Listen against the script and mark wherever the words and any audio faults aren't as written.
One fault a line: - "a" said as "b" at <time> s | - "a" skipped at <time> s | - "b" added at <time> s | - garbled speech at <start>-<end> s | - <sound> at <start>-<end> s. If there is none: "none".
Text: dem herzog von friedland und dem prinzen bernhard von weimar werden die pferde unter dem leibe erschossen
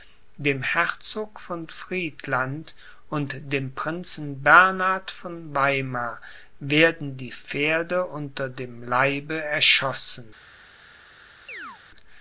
- chirp at 11.5-11.8 s